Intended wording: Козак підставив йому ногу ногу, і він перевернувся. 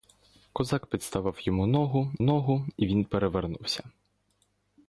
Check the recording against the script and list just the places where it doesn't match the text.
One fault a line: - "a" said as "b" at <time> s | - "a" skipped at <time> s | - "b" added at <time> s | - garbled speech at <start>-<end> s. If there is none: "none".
none